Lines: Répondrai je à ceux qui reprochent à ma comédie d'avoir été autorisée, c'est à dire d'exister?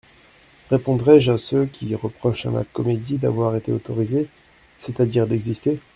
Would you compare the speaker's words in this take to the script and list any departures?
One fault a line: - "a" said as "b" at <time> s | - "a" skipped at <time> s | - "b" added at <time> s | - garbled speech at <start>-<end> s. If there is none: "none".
none